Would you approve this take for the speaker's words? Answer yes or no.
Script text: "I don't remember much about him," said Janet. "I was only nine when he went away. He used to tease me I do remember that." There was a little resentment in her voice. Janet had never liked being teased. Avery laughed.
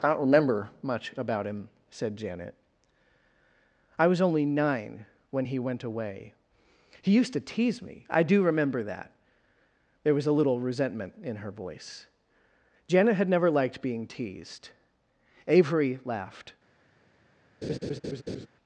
yes